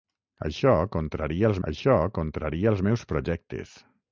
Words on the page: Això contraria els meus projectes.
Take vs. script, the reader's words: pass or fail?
fail